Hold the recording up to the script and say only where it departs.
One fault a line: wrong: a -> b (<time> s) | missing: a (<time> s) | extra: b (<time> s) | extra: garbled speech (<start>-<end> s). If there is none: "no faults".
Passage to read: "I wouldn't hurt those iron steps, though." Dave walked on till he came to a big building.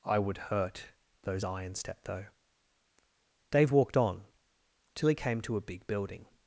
wrong: wouldn't -> would (0.2 s)
wrong: steps -> step (1.8 s)